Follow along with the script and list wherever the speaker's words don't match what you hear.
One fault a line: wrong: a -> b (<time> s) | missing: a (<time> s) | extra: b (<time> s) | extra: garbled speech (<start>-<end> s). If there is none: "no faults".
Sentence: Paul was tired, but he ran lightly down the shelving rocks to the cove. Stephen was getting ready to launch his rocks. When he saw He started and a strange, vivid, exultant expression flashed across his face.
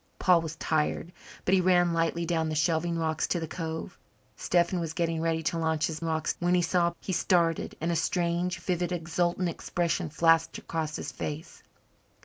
no faults